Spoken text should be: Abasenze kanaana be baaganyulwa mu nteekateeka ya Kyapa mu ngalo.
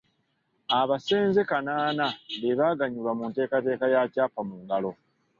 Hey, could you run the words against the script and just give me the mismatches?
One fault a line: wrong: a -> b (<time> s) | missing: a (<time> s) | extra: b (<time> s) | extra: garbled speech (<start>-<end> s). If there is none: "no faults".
no faults